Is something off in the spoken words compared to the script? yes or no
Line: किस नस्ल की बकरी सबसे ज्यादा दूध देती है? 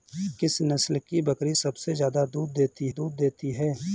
yes